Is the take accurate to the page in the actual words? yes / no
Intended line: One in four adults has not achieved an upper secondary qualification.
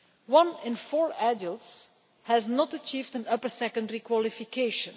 yes